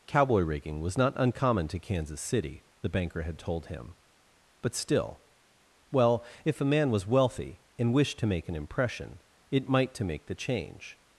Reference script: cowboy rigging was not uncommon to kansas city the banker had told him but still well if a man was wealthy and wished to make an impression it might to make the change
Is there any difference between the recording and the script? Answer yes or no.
no